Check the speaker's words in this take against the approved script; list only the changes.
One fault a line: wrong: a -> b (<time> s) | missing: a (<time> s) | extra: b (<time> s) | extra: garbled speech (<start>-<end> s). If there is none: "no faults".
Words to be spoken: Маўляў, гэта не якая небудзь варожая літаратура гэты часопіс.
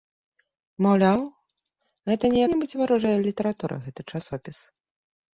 missing: якая (2.4 s)